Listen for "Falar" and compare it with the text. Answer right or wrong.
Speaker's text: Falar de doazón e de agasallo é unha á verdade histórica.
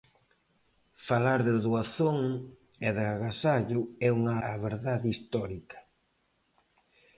right